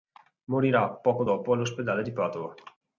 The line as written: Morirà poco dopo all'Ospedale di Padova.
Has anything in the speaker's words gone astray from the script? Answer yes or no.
no